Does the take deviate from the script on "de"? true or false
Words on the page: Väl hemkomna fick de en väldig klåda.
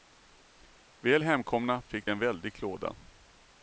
true